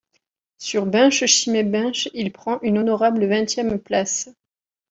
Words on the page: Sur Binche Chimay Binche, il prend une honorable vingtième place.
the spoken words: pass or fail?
pass